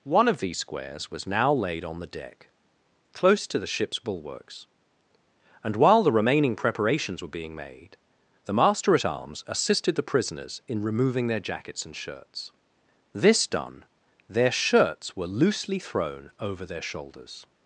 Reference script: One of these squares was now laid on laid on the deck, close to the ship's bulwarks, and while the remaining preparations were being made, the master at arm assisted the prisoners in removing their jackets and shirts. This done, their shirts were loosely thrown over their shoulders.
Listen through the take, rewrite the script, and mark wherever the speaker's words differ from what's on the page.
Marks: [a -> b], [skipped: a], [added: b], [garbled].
One of these squares was now laid on [skipped: laid on] the deck, close to the ship's bulwarks, and while the remaining preparations were being made, the master at [arm -> arms] assisted the prisoners in removing their jackets and shirts. This done, their shirts were loosely thrown over their shoulders.